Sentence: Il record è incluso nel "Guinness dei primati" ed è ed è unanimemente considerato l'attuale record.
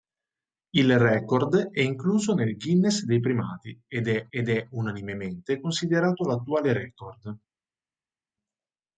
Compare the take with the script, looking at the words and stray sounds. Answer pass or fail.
pass